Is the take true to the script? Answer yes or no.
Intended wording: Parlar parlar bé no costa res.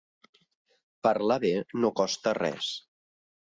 no